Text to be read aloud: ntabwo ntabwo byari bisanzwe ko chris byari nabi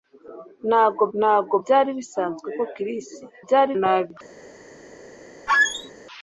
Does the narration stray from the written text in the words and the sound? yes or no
yes